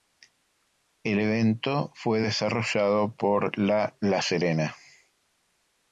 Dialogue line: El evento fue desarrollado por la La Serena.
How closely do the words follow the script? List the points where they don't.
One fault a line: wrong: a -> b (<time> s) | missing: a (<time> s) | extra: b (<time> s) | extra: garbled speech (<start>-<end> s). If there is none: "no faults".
no faults